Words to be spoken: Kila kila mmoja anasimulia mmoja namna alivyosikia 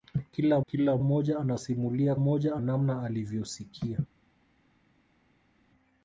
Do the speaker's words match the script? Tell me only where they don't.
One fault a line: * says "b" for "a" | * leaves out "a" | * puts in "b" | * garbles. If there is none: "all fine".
all fine